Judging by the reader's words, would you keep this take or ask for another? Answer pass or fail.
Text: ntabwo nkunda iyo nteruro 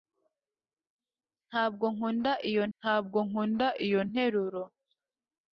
fail